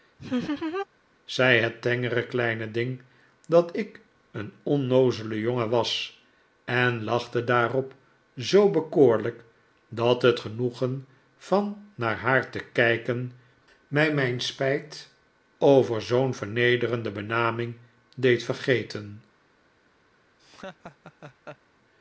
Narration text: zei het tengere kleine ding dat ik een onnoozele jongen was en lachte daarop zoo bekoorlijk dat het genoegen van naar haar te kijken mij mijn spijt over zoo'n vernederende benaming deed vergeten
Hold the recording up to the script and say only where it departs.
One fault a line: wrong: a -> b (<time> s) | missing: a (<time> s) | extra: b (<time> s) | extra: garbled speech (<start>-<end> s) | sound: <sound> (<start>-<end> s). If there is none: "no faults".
sound: laugh (0.2-0.9 s)
sound: laugh (20.4-21.6 s)